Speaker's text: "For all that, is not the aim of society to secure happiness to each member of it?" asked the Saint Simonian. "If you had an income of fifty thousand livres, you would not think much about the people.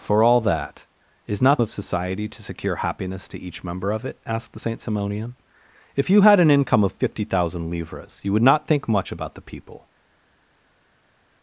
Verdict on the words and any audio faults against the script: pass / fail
fail